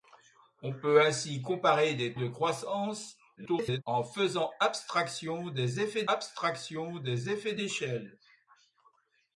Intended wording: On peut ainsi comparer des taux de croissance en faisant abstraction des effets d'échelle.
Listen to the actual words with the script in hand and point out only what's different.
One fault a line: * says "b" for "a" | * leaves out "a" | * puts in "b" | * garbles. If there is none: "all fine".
* leaves out "taux"
* garbles
* puts in "abstraction des effets"